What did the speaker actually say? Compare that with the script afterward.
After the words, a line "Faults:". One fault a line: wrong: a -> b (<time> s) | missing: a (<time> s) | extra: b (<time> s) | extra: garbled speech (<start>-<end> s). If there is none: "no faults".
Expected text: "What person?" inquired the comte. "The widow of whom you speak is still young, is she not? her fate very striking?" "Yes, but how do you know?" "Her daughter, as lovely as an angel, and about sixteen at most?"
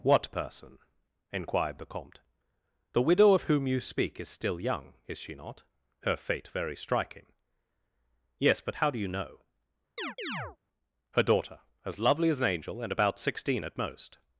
"What person?" inquired the comte. "The widow of whom you speak is still young, is she not? her fate very striking?" "Yes, but how do you know?" "Her daughter, as lovely as an angel, and about sixteen at most?"
Faults:
no faults